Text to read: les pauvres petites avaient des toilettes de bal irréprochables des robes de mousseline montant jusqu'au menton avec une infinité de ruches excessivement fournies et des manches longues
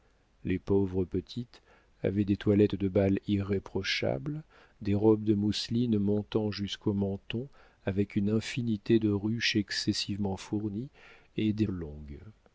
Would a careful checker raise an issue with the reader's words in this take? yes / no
yes